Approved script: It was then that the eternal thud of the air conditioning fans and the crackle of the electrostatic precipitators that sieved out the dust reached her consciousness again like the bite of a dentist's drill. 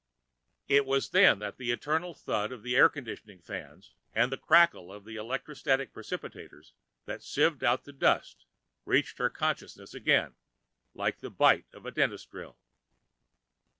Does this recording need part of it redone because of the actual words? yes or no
no